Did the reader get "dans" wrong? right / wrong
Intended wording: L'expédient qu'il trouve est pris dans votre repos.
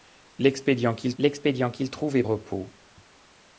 wrong